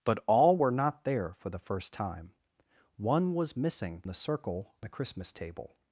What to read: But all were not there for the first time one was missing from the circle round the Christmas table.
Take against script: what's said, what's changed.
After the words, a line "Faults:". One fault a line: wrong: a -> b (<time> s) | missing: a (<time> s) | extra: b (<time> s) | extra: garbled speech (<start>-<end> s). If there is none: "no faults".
But all were not there for the first time one was missing the circle the Christmas table.
Faults:
missing: from (4.0 s)
missing: round (4.7 s)